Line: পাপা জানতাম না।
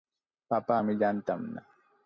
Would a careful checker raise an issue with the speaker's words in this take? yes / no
yes